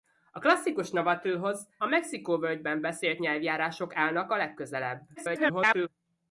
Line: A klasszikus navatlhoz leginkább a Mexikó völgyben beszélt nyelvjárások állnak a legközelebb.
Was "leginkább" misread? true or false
true